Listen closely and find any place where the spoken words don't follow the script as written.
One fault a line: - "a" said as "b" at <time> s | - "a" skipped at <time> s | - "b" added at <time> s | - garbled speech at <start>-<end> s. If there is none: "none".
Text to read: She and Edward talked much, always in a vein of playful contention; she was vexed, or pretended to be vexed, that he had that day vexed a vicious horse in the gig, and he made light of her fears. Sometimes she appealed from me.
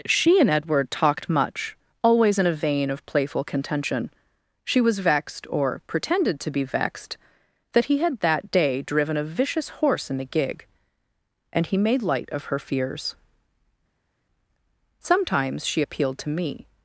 - "vexed" said as "driven" at 8.8 s
- "from" said as "to" at 16.2 s